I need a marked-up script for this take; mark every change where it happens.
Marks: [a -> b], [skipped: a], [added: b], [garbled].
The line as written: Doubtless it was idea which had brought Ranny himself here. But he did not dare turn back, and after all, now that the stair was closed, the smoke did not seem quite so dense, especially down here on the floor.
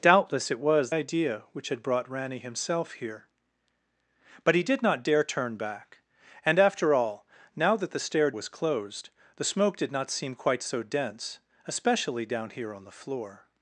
Doubtless it was idea which had brought Ranny himself here. But he did not dare turn back, and after all, now that the stair was closed, the smoke did not seem quite so dense, especially down here on the floor.